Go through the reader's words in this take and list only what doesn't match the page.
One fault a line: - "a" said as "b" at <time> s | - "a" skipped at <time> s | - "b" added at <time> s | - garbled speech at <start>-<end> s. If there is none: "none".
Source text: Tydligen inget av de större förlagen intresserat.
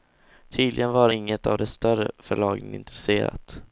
- "var" added at 0.9 s